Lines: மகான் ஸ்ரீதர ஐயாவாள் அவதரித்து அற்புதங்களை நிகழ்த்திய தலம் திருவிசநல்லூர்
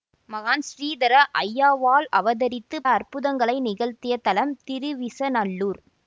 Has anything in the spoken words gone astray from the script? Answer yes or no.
no